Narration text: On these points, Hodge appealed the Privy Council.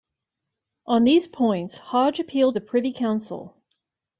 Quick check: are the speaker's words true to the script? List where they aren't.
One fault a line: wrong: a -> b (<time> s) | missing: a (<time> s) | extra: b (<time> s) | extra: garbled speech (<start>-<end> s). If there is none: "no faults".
no faults